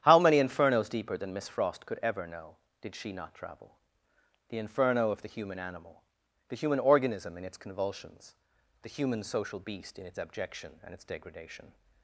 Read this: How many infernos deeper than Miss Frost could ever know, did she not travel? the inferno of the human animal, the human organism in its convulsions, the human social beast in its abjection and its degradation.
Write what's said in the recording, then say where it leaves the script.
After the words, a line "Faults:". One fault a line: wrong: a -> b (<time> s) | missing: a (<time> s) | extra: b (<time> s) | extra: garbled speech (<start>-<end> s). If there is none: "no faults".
How many infernos deeper than Miss Frost could ever know, did she not travel? the inferno of the human animal, the human organism in its convulsions, the human social beast in its abjection and its degradation.
Faults:
no faults